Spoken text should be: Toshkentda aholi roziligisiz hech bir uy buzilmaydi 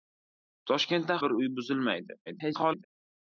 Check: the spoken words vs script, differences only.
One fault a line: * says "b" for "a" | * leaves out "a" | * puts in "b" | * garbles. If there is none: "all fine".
* leaves out "aholi roziligisiz hech"
* garbles